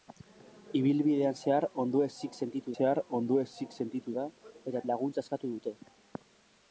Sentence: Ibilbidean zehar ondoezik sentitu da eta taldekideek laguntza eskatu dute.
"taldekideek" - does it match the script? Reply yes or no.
no